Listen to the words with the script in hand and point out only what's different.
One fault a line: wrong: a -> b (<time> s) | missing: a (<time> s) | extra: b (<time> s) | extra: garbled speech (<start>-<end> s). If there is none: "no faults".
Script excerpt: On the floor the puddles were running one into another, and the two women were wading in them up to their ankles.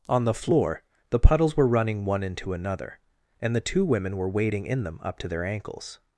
no faults